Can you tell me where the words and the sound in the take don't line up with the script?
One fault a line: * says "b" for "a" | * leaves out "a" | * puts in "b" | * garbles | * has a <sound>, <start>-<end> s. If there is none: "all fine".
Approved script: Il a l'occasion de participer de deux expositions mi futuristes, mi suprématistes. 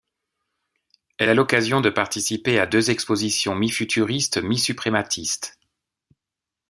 * says "Elle" for "Il"
* says "à" for "de"